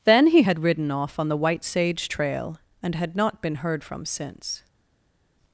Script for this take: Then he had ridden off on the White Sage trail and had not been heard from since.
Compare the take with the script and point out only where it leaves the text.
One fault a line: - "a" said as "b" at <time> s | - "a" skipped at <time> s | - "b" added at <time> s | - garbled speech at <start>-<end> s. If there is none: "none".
none